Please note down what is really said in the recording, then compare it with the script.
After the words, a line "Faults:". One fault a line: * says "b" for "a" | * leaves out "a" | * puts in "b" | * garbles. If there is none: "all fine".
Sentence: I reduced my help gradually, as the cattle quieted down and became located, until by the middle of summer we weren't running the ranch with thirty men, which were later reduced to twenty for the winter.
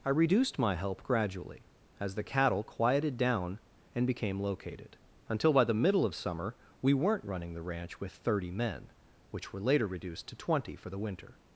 I reduced my help gradually, as the cattle quieted down and became located, until by the middle of summer we weren't running the ranch with thirty men, which were later reduced to twenty for the winter.
Faults:
all fine